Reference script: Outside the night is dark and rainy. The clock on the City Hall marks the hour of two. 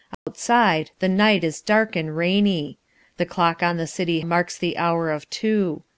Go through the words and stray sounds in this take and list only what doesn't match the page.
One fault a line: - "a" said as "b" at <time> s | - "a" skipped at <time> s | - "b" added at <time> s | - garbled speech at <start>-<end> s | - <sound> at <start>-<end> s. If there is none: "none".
- dropout at 0.1-0.3 s
- "Hall" skipped at 4.2 s